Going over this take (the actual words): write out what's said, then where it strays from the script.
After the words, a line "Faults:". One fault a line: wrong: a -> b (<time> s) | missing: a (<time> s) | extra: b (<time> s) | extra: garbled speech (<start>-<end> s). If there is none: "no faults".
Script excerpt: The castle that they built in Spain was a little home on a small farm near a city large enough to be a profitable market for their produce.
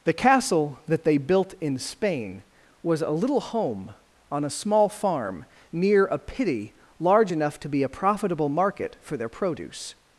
The castle that they built in Spain was a little home on a small farm near a pity large enough to be a profitable market for their produce.
Faults:
wrong: city -> pity (6.2 s)